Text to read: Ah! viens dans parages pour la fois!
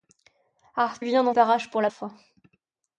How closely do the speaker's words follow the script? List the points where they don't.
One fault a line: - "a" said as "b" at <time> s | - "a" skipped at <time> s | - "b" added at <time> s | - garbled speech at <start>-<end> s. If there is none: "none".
none